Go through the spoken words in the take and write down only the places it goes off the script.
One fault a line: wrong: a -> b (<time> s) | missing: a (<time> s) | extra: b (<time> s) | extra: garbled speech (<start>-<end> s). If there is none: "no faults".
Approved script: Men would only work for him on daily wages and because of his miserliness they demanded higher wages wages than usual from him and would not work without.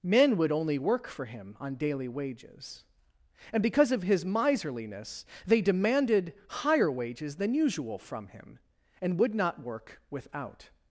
missing: wages (7.4 s)